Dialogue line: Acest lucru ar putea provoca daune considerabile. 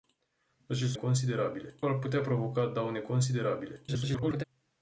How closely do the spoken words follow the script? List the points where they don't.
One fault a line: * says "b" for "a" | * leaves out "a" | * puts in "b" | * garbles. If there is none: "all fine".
* says "considerabile" for "lucru"
* garbles